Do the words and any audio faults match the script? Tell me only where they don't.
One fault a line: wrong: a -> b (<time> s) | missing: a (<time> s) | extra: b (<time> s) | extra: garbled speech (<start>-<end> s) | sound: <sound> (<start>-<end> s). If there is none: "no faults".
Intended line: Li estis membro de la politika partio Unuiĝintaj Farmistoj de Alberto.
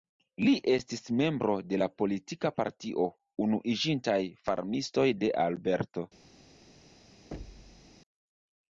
sound: thud (7.3-8.0 s)